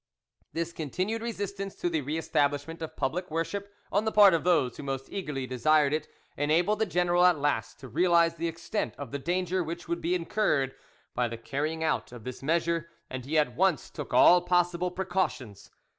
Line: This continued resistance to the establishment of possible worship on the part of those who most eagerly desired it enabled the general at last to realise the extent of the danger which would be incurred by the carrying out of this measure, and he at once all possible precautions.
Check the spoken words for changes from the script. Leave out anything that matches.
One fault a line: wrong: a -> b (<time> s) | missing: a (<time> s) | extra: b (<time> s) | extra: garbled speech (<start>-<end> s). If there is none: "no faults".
extra: re (2.0 s)
wrong: possible -> public (3.0 s)
extra: took (13.9 s)